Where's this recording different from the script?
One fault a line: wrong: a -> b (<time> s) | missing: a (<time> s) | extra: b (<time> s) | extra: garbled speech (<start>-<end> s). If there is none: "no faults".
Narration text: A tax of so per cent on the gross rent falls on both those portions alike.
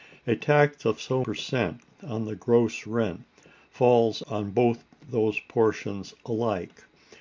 no faults